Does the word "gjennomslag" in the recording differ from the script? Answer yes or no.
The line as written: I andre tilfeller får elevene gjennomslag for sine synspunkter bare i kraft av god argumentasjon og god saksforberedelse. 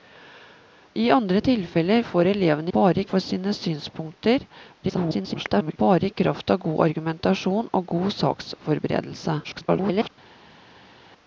yes